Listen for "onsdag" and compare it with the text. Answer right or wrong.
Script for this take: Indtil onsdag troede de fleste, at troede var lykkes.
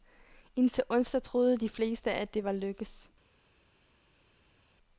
right